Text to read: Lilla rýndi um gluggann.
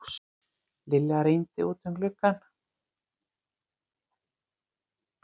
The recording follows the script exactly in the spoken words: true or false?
false